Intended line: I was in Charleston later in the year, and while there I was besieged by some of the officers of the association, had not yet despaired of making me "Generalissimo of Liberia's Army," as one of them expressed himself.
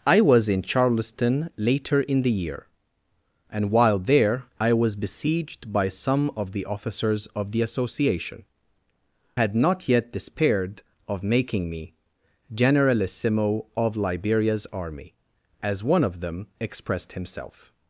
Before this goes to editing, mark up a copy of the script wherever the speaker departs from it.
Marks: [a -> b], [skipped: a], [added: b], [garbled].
I was in Charleston later in the year, and while there I was besieged by some of the officers of the association, had not yet despaired of making me "Generalissimo of Liberia's Army," as one of them expressed himself.